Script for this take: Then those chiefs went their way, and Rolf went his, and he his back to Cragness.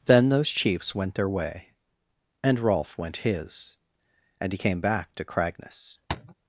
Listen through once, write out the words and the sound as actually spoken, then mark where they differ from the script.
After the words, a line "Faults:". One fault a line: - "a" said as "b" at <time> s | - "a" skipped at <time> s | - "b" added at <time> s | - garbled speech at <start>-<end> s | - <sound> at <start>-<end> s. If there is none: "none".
Then those chiefs went their way, and Rolf went his, and he came back to Cragness.
Faults:
- "his" said as "came" at 4.5 s
- tap at 6.1-6.3 s